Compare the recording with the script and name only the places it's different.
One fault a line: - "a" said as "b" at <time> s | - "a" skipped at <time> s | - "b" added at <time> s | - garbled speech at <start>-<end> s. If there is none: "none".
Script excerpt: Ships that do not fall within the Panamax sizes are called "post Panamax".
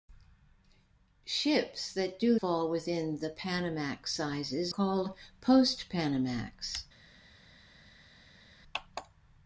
- "not" skipped at 2.4 s
- "are" skipped at 4.7 s